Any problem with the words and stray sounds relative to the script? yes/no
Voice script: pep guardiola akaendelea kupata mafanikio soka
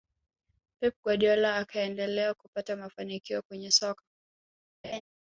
yes